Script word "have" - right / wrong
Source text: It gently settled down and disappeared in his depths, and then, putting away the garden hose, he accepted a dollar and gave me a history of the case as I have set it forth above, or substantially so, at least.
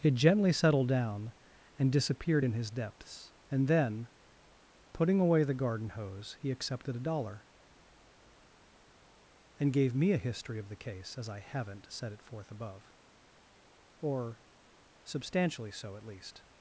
wrong